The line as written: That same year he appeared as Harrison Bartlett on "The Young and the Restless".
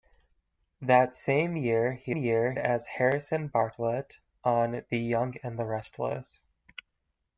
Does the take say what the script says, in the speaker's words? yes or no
no